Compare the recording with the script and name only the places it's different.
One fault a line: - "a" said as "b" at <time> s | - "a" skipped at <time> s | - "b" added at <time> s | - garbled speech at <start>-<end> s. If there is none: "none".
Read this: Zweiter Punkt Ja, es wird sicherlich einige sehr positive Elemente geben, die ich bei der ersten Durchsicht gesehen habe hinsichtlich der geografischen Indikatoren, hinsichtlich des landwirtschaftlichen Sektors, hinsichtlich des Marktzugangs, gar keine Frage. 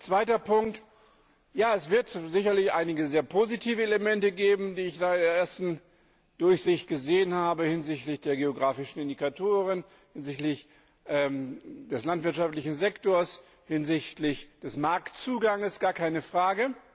none